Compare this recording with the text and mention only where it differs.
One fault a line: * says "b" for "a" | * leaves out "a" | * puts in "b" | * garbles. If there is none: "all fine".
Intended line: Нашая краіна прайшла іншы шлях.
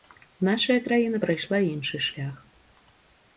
all fine